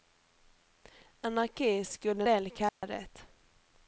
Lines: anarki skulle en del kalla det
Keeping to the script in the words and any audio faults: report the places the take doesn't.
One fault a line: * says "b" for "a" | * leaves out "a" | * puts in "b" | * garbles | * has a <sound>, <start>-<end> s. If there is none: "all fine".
* leaves out "en"
* has a dropout, 2.7-2.8 s